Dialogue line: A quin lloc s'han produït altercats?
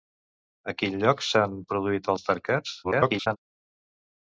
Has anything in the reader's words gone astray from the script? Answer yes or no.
yes